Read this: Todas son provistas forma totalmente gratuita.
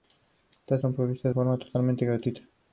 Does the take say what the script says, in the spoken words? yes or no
yes